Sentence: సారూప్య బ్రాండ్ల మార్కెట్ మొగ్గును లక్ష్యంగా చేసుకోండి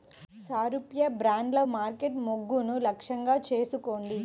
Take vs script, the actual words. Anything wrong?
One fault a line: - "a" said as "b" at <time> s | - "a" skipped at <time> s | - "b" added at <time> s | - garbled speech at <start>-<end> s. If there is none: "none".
none